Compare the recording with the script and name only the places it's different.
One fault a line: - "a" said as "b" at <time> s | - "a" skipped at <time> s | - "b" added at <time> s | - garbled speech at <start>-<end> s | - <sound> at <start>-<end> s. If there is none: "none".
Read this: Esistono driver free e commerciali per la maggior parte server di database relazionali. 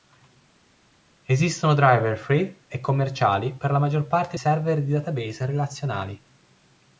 none